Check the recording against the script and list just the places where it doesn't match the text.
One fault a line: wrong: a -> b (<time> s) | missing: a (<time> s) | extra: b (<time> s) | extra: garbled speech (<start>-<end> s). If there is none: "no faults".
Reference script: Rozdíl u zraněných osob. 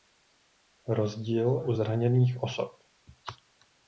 no faults